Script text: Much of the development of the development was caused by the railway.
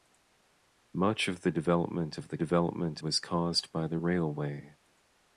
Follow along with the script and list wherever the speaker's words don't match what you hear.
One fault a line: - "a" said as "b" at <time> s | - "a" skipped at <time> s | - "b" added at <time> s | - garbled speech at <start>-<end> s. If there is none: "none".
none